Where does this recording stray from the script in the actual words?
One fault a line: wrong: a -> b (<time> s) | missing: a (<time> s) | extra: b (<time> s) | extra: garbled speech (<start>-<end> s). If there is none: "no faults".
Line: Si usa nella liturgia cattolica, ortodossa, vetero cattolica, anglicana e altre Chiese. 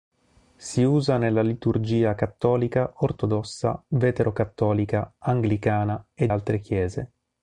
no faults